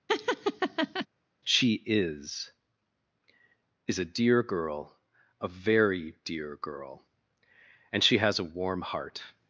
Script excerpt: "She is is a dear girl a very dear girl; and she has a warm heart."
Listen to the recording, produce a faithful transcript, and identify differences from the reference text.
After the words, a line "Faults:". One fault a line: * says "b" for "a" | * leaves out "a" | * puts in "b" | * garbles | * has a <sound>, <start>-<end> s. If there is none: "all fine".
"She is is a dear girl a very dear girl; and she has a warm heart."
Faults:
* has a laugh, 0.1-1.1 s